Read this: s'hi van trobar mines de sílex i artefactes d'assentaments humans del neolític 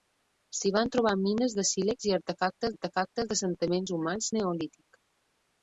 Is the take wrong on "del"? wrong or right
wrong